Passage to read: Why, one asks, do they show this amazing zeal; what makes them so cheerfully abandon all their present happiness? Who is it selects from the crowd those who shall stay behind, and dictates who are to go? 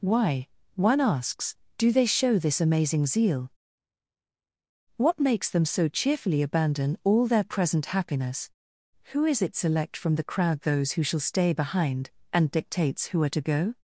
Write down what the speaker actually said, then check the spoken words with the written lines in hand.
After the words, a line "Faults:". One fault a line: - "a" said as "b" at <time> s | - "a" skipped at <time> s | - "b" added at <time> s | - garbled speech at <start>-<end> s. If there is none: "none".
Why, one asks, do they show this amazing zeal; what makes them so cheerfully abandon all their present happiness? Who is it select from the crowd those who shall stay behind, and dictates who are to go?
Faults:
- "selects" said as "select" at 9.5 s